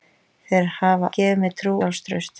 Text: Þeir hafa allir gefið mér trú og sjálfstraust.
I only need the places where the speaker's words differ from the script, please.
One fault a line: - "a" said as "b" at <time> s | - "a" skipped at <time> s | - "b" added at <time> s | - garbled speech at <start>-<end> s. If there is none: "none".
- "allir" skipped at 1.1 s
- "og" skipped at 1.8 s